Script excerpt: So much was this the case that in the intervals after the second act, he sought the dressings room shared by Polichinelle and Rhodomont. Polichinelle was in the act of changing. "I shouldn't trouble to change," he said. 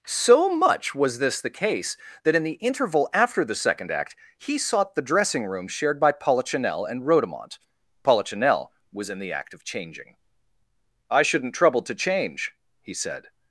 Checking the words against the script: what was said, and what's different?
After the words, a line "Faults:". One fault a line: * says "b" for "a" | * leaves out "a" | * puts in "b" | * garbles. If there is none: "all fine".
So much was this the case that in the interval after the second act, he sought the dressing room shared by Polichinelle and Rhodomont. Polichinelle was in the act of changing. "I shouldn't trouble to change," he said.
Faults:
* says "interval" for "intervals"
* says "dressing" for "dressings"